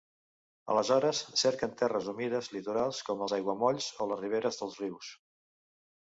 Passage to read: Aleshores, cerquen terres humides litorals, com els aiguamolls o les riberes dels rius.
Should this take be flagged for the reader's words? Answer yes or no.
no